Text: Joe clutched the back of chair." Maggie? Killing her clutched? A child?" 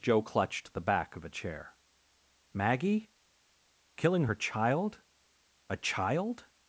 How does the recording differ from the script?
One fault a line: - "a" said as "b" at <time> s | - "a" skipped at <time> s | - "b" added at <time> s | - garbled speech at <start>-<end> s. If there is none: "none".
- "a" added at 1.2 s
- "clutched" said as "child" at 4.3 s